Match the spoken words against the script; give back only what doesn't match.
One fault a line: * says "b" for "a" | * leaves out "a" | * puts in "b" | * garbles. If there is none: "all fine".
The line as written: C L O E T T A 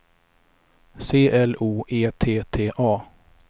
all fine